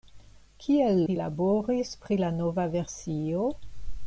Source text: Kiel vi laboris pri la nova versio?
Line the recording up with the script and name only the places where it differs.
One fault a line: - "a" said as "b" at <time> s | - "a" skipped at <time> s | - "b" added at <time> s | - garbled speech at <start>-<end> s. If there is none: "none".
none